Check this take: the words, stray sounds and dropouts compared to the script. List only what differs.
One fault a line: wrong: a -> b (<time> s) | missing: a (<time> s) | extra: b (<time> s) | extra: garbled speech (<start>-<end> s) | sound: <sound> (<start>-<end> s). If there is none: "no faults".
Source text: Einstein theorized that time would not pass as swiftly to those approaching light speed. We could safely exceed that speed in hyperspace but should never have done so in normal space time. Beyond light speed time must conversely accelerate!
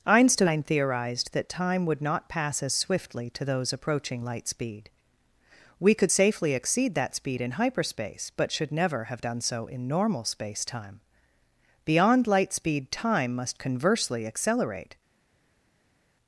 no faults